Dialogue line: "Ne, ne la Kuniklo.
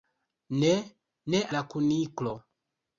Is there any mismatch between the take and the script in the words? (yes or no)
no